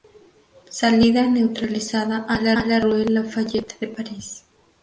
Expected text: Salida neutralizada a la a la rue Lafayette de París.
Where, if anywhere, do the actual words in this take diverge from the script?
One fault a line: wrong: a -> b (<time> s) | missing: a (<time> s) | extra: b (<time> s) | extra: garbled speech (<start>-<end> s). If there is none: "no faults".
no faults